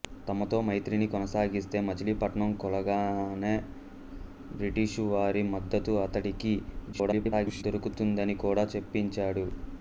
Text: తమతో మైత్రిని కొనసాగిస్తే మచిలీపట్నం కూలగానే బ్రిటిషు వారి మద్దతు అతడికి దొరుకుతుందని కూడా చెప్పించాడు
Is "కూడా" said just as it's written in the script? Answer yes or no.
yes